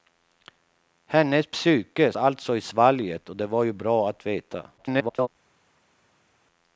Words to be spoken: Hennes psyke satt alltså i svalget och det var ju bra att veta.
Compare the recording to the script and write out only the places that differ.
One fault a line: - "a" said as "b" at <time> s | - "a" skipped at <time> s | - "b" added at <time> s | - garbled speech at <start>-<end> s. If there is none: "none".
- "satt" skipped at 2.1 s
- garbled speech at 4.8-5.3 s